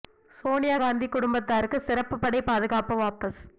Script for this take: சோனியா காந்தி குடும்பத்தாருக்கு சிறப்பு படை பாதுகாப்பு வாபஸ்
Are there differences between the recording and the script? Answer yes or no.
no